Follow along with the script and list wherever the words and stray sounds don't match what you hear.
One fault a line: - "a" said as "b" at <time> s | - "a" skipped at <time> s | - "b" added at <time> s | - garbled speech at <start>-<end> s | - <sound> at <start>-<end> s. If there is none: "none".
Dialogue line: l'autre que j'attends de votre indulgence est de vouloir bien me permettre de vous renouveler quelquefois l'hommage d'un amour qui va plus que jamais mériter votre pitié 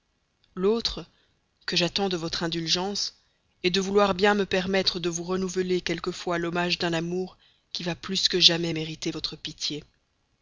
none